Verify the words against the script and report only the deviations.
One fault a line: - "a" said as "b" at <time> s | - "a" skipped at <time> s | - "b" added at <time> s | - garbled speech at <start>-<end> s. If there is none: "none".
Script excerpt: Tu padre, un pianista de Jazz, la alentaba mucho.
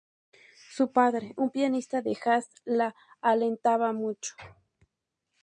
- "Tu" said as "Su" at 0.7 s